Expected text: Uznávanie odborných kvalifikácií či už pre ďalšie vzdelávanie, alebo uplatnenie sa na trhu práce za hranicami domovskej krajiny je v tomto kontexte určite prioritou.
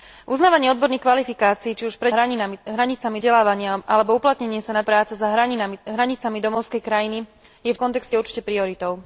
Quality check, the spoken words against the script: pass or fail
fail